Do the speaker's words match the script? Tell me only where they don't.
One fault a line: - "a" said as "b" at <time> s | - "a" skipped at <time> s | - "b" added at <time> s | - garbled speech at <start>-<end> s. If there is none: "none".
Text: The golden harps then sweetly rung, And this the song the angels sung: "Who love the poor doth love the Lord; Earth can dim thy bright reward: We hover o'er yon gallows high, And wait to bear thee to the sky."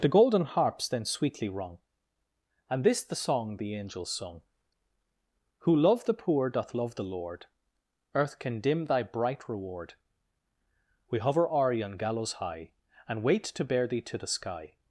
none